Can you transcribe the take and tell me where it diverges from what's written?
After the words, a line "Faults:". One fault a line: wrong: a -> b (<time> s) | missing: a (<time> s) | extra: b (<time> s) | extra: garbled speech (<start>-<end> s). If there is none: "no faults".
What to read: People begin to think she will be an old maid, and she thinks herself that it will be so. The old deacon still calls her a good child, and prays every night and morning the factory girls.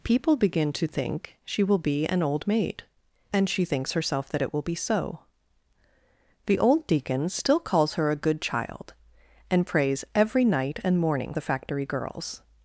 People begin to think she will be an old maid, and she thinks herself that it will be so. The old deacon still calls her a good child, and prays every night and morning the factory girls.
Faults:
no faults